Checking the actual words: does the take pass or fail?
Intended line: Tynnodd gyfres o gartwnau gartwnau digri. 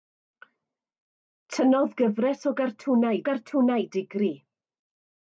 pass